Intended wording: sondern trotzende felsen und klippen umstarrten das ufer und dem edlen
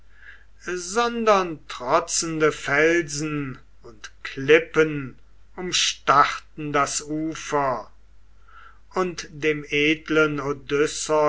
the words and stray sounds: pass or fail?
pass